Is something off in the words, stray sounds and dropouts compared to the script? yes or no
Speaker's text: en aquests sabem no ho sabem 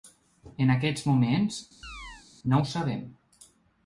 yes